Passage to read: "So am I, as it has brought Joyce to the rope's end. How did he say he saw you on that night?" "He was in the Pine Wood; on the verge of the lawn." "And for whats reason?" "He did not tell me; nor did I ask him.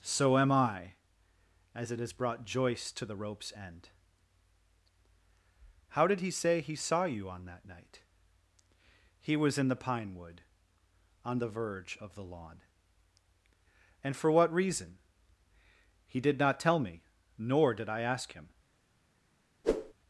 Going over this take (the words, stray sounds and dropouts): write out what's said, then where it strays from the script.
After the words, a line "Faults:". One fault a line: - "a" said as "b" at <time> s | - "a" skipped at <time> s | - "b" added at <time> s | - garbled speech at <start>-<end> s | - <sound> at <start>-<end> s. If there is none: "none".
"So am I, as it has brought Joyce to the rope's end. How did he say he saw you on that night?" "He was in the Pine Wood; on the verge of the lawn." "And for what reason?" "He did not tell me; nor did I ask him.
Faults:
- "whats" said as "what" at 14.3 s
- whoosh at 19.6-19.9 s